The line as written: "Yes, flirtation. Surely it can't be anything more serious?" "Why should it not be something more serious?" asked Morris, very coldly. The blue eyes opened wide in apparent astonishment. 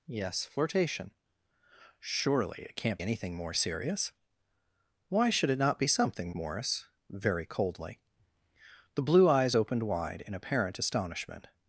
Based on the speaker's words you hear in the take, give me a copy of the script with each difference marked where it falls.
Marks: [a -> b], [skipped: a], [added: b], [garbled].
"Yes, flirtation. Surely it can't [skipped: be] anything more serious?" "Why should it not be something [skipped: more serious?" asked] Morris, very coldly. The blue eyes opened wide in apparent astonishment.